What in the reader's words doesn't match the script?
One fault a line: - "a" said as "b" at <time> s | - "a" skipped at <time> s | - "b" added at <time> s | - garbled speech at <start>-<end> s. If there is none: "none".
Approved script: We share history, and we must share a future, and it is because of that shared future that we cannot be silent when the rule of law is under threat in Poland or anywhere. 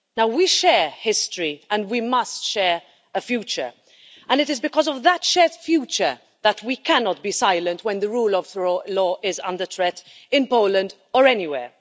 none